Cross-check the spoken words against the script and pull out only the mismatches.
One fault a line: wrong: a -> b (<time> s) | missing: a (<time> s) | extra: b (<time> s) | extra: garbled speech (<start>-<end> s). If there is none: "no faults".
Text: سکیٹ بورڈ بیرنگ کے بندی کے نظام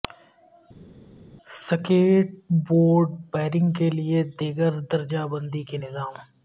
extra: لئے دیگر درجہ (3.9 s)